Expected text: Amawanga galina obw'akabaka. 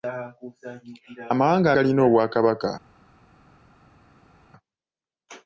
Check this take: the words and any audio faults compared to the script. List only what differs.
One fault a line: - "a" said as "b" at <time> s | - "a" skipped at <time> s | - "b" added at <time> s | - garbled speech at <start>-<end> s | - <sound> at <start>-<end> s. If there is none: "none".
none